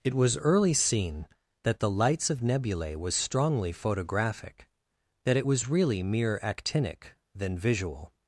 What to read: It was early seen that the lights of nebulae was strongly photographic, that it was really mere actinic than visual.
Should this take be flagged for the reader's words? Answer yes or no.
no